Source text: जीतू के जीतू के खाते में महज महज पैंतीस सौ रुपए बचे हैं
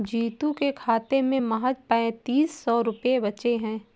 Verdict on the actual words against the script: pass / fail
fail